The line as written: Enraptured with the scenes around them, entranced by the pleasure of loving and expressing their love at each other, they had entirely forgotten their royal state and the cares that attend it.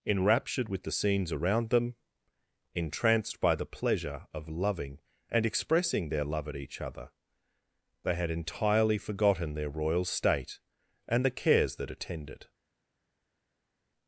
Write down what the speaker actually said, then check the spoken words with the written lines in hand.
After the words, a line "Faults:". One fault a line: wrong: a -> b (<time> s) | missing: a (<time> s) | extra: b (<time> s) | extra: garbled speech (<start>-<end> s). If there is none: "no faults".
Enraptured with the scenes around them, entranced by the pleasure of loving and expressing their love at each other, they had entirely forgotten their royal state and the cares that attend it.
Faults:
no faults